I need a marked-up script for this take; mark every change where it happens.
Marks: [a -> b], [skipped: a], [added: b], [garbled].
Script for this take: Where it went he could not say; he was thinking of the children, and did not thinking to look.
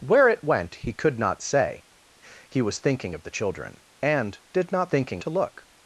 Where it went he could not say; he was thinking of the children, and did not thinking to look.